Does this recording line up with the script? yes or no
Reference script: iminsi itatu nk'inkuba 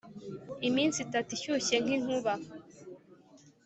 no